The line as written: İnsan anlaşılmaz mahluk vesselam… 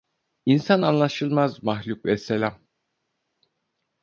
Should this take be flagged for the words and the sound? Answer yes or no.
no